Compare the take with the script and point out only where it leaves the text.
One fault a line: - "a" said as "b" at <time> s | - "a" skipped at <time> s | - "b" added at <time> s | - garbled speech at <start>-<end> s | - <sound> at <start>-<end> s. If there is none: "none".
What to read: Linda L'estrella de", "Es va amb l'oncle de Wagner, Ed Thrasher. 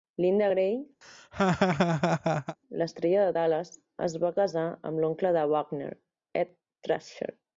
- "Gray" added at 0.5 s
- laugh at 1.0-2.6 s
- "Dallas" added at 3.4 s
- "casar" added at 4.4 s